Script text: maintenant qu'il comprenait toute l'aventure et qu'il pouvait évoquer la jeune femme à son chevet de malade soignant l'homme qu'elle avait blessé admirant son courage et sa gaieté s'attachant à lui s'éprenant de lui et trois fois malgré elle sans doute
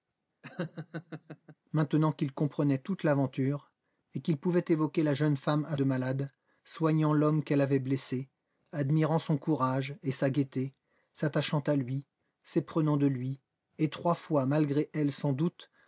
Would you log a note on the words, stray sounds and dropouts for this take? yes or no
yes